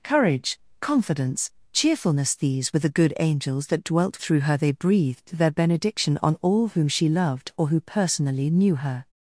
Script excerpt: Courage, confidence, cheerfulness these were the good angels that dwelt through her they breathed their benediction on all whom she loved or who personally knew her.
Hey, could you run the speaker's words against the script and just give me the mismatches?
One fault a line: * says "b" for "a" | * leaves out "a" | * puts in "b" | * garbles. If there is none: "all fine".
all fine